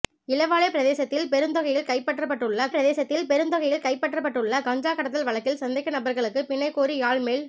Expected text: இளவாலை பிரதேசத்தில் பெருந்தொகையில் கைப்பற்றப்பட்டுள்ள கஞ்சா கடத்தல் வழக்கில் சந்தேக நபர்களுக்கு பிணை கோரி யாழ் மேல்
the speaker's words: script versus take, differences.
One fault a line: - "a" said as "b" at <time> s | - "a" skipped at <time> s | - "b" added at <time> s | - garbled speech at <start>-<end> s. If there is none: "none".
- "பிரதேசத்தில் பெருந்தொகையில் கைப்பற்றப்பட்டுள்ள" added at 2.7 s